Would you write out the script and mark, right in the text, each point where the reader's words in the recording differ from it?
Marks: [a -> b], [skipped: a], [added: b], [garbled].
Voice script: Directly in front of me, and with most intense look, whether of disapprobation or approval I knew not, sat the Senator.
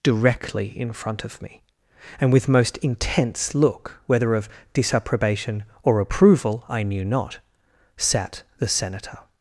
Directly in front of me, and with most intense look, whether of disapprobation or approval I knew not, sat the Senator.